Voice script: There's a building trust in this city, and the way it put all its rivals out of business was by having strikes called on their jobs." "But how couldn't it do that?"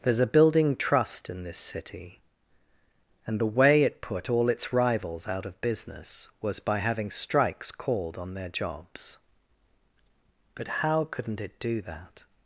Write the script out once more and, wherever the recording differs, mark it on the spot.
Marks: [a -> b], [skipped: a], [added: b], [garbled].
There's a building trust in this city, and the way it put all its rivals out of business was by having strikes called on their jobs." "But how couldn't it do that?"